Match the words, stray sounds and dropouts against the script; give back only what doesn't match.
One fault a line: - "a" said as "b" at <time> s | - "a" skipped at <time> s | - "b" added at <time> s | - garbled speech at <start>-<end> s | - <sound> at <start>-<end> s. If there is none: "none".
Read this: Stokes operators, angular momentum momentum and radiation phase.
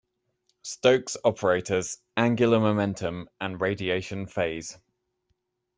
- "momentum" skipped at 3.3 s